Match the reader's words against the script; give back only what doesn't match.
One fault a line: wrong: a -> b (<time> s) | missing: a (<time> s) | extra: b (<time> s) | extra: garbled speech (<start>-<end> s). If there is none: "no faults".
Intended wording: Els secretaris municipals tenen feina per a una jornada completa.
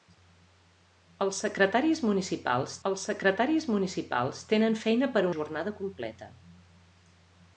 extra: els secretaris municipals (2.9 s)
missing: una (5.3 s)